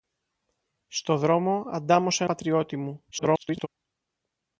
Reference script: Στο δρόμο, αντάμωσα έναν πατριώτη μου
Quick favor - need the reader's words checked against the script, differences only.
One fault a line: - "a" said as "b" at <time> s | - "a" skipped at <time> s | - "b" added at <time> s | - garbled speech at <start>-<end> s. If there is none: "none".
- "έναν" skipped at 2.2 s
- garbled speech at 3.1-3.7 s